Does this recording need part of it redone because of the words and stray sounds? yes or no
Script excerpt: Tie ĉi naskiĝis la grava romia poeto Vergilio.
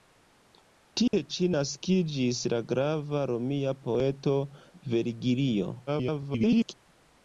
yes